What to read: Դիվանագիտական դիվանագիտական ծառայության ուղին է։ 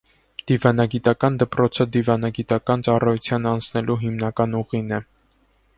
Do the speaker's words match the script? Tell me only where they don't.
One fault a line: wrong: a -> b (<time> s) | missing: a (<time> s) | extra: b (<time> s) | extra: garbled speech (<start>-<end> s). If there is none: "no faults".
extra: դպրոցը (1.4 s)
extra: անցնելու հիմնական (3.5 s)